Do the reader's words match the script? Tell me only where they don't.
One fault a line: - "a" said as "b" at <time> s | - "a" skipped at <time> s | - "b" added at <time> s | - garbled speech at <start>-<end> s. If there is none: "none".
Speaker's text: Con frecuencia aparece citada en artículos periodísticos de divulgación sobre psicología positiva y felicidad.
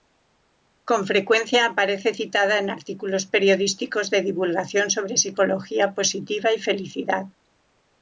none